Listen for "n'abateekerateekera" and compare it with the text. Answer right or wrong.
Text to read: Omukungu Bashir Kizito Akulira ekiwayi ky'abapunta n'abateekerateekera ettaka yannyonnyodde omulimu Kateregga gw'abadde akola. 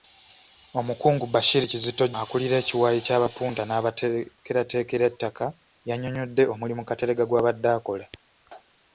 right